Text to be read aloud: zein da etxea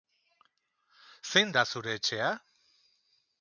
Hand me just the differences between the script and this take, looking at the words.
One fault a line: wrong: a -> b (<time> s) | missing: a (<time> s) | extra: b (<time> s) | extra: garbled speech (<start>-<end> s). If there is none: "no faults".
extra: zure (1.7 s)